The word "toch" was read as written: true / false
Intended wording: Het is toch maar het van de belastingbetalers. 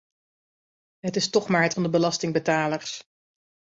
true